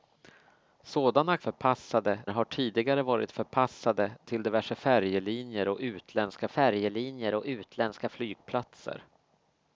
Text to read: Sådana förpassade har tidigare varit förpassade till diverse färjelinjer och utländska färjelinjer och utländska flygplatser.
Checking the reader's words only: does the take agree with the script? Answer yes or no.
yes